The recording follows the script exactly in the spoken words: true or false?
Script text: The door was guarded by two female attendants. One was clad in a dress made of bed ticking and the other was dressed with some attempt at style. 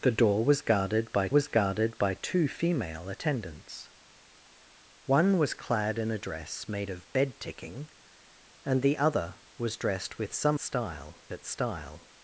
false